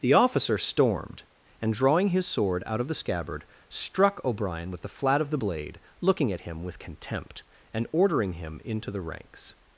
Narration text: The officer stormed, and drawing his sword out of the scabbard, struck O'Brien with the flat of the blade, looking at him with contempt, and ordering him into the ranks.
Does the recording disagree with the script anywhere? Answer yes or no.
no